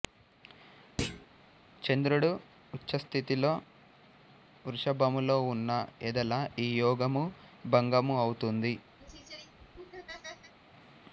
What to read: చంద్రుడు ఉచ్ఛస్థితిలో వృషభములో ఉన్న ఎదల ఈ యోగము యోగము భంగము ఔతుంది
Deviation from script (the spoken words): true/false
true